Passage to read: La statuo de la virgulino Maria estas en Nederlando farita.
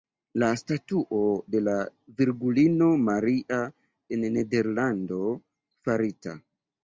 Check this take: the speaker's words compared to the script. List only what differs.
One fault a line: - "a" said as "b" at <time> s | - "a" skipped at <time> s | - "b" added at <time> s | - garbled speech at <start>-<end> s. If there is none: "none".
- "estas" skipped at 3.6 s